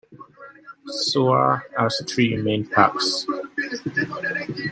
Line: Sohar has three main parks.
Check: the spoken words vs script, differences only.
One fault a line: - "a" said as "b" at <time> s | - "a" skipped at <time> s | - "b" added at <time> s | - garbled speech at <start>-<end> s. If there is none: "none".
none